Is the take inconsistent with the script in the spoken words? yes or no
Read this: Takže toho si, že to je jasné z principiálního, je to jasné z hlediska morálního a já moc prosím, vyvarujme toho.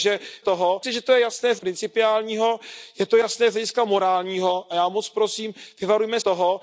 no